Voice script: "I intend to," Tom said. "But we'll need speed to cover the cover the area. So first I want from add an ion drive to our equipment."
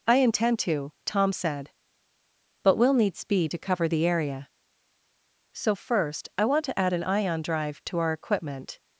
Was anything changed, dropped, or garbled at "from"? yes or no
yes